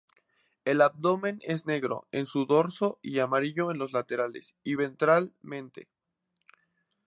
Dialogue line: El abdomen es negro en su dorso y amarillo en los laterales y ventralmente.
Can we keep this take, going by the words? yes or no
yes